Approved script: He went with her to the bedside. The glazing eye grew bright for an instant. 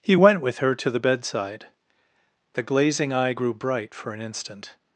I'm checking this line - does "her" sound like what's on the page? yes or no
yes